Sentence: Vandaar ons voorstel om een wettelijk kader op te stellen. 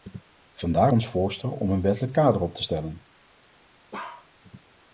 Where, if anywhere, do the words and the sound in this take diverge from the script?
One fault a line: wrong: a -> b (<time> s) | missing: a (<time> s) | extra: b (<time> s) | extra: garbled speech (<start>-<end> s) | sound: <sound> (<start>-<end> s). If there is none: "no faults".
sound: bark (3.9-4.3 s)